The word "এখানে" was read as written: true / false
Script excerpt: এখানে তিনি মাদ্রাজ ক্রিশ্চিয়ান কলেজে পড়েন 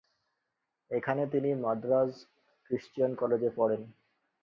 true